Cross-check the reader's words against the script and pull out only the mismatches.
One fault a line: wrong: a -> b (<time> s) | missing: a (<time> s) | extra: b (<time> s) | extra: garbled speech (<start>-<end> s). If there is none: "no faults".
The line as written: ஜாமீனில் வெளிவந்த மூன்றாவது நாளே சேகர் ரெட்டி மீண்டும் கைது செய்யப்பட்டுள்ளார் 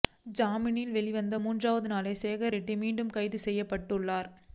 no faults